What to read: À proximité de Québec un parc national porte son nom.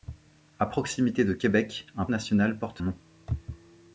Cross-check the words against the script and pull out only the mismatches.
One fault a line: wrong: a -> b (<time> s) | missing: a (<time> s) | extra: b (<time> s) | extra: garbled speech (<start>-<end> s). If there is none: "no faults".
missing: parc (2.0 s)
missing: son (2.8 s)